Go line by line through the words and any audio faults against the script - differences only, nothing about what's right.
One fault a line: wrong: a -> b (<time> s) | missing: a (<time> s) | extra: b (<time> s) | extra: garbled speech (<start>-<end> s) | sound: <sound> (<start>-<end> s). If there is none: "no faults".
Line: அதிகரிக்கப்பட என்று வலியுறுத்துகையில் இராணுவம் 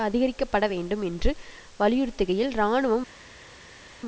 extra: வேண்டும் (0.7 s)